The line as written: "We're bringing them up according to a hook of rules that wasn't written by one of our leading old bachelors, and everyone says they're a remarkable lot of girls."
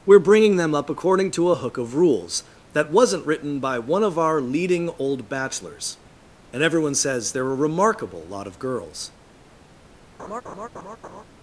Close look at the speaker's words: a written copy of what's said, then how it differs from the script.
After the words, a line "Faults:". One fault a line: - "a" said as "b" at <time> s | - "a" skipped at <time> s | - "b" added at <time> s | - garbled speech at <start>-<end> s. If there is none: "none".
"We're bringing them up according to a hook of rules that wasn't written by one of our leading old bachelors, and everyone says they're a remarkable lot of girls."
Faults:
none